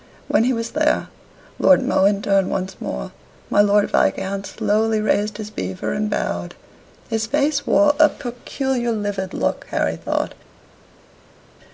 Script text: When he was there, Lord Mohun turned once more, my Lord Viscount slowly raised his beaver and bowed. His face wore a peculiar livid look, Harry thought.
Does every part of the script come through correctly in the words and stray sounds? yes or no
yes